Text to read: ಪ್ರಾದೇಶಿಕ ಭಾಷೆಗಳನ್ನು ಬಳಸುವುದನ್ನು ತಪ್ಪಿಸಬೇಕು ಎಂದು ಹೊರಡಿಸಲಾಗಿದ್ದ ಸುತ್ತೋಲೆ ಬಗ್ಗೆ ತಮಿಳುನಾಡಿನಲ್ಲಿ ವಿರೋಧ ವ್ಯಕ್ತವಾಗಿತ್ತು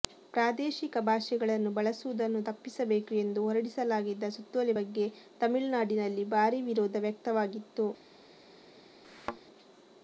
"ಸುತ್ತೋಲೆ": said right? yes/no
yes